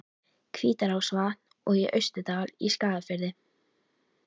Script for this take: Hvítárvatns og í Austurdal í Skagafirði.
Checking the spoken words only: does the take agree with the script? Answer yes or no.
yes